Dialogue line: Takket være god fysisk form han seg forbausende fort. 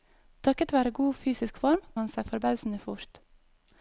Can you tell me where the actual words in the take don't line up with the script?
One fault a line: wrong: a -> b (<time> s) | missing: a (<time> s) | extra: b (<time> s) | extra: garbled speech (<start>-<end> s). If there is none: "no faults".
no faults